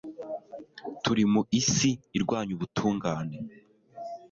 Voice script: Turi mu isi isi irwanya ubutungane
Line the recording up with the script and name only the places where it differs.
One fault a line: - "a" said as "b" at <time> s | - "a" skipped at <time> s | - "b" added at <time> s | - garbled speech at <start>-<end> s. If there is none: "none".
- "isi" skipped at 1.9 s